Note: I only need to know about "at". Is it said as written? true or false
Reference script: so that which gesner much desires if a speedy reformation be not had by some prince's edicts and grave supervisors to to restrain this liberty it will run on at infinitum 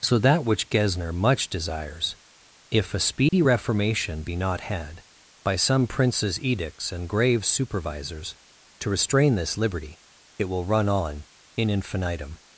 false